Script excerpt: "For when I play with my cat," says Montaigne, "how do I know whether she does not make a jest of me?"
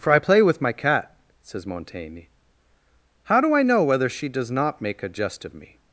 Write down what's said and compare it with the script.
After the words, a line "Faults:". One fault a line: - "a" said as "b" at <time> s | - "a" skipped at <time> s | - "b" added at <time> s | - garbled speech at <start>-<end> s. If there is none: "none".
"For I play with my cat," says Montaigne, "how do I know whether she does not make a jest of me?"
Faults:
- "when" skipped at 0.1 s